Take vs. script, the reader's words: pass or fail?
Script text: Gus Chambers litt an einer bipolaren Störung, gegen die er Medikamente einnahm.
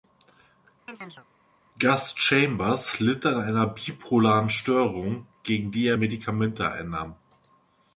pass